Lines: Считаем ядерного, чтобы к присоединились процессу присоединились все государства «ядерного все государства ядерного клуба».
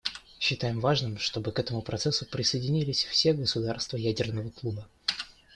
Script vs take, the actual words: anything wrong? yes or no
yes